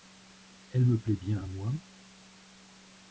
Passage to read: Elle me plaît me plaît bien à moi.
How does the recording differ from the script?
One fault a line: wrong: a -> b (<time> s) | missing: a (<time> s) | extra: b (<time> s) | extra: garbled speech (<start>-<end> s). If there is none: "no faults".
missing: me plaît (1.1 s)